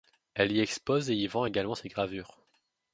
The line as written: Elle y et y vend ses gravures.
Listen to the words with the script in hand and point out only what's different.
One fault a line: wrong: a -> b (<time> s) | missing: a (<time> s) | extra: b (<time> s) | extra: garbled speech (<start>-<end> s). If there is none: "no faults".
extra: expose (0.6 s)
extra: également (1.4 s)